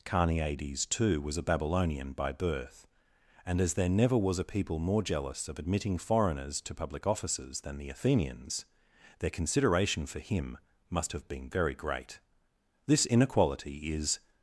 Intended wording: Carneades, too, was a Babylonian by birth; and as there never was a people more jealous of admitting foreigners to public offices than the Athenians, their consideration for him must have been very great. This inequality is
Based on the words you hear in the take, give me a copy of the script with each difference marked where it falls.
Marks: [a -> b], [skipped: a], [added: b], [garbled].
Carneades, too, was a Babylonian by birth; and as there never was a people more jealous of admitting foreigners to public offices than the Athenians, their consideration for him must have been very great. This inequality is